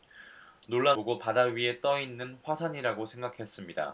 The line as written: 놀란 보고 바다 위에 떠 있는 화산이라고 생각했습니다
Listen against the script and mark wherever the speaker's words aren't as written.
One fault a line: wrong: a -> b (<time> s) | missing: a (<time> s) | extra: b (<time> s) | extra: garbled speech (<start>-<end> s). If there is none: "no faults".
no faults